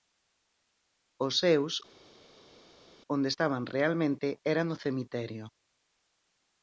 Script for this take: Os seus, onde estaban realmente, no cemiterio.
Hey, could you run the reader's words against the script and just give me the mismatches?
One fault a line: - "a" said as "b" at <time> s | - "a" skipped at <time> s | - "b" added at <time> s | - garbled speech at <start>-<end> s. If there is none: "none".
- "era" added at 4.5 s